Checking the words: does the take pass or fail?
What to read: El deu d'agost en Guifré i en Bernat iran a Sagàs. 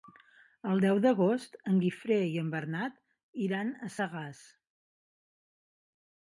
pass